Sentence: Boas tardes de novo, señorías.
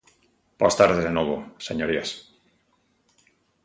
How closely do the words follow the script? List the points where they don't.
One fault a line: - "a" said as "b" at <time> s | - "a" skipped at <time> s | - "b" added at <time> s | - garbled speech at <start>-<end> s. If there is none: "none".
none